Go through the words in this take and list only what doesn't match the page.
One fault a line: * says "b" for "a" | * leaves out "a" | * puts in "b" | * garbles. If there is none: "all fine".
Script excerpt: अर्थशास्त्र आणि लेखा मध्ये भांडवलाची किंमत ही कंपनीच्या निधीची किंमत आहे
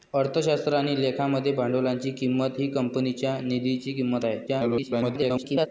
* garbles